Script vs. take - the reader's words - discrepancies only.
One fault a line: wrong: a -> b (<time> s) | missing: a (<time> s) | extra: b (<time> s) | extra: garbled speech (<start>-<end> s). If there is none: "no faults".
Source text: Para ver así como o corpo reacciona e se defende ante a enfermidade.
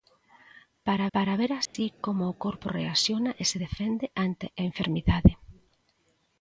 extra: para (1.1 s)